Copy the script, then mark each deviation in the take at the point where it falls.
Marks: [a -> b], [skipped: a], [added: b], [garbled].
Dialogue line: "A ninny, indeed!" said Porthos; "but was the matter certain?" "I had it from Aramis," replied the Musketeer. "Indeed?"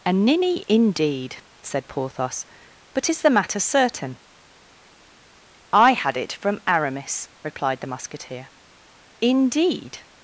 "A ninny, indeed!" said Porthos; "but [was -> is] the matter certain?" "I had it from Aramis," replied the Musketeer. "Indeed?"